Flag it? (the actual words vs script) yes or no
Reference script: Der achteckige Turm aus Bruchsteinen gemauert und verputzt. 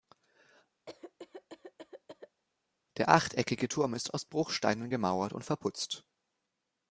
yes